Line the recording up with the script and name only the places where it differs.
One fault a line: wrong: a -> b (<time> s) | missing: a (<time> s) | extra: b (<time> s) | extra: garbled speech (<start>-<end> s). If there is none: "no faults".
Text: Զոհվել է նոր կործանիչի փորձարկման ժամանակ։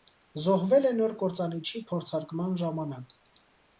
no faults